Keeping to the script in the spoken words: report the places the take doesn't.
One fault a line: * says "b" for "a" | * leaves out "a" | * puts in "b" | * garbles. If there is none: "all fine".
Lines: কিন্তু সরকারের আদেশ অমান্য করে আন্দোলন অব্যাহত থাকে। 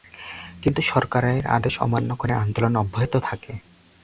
all fine